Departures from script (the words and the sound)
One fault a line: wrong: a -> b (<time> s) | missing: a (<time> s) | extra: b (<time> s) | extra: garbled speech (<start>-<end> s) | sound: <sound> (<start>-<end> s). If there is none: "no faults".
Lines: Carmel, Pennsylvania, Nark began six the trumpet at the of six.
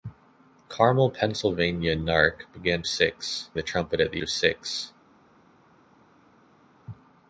no faults